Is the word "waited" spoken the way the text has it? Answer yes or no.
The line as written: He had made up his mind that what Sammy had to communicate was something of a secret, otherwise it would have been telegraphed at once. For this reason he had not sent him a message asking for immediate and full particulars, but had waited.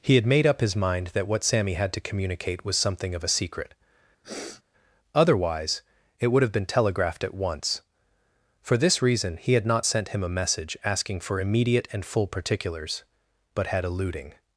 no